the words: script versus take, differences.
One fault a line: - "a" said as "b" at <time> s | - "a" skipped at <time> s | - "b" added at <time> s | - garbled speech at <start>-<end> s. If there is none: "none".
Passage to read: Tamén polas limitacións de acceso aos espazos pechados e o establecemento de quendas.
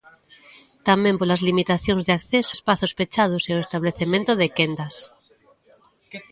- "aos" skipped at 2.5 s